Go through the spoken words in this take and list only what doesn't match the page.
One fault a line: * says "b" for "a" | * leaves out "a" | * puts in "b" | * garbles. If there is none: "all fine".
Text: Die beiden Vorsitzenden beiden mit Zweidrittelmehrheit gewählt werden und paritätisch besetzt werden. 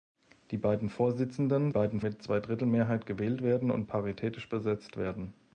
all fine